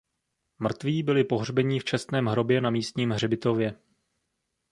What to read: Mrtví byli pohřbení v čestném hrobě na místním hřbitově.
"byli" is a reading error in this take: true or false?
false